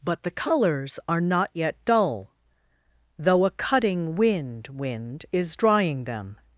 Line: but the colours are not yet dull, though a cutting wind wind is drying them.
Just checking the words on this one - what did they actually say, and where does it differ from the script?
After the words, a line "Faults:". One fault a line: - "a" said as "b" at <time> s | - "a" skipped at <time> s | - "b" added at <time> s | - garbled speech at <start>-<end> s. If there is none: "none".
but the colours are not yet dull, though a cutting wind wind is drying them.
Faults:
none